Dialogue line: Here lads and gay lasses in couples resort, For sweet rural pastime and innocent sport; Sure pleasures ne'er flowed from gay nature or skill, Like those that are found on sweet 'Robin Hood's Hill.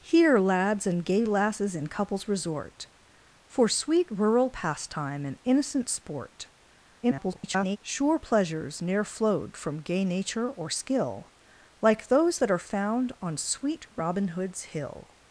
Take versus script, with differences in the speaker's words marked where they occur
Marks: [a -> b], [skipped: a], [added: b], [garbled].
Here lads and gay lasses in couples resort, For sweet rural pastime and innocent sport; [garbled] Sure pleasures ne'er flowed from gay nature or skill, Like those that are found on sweet 'Robin Hood's Hill.